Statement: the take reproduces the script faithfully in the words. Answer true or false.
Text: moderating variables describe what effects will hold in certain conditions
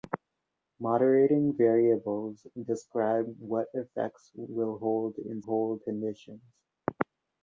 false